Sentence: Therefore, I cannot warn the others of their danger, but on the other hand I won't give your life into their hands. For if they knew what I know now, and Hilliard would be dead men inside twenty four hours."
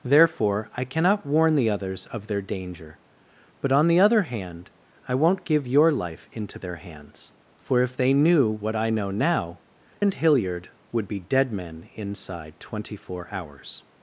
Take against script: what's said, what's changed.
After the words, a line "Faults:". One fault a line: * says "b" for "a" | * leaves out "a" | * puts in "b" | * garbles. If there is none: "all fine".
Therefore, I cannot warn the others of their danger, but on the other hand I won't give your life into their hands. For if they knew what I know now, and Hilliard would be dead men inside twenty four hours."
Faults:
all fine